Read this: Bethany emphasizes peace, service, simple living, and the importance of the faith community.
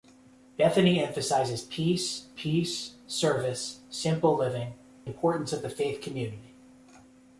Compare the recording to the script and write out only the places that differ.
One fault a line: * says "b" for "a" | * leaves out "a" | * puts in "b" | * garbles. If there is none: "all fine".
* puts in "peace"
* leaves out "and the"